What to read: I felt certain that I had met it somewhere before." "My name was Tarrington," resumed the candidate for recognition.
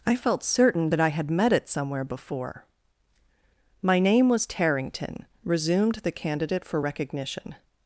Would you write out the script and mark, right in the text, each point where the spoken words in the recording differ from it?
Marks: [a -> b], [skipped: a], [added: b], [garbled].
I felt certain that I had met it somewhere before." "My name was Tarrington," resumed the candidate for recognition.